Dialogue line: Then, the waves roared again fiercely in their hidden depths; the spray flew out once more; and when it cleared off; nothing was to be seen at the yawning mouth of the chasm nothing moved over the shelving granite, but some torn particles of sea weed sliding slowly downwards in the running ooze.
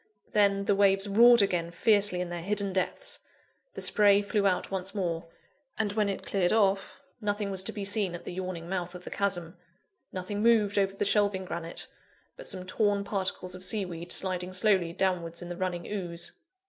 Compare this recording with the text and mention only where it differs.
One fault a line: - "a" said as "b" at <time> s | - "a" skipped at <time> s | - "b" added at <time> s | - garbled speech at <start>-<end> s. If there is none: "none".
none